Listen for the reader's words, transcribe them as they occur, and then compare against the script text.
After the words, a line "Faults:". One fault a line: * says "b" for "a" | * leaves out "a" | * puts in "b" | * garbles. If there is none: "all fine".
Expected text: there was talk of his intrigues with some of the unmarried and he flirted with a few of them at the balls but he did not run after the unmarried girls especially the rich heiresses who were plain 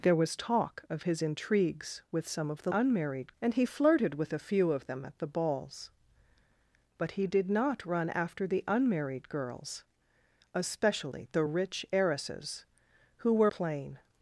there was talk of his intrigues with some of the unmarried and he flirted with a few of them at the balls but he did not run after the unmarried girls especially the rich heiresses who were plain
Faults:
all fine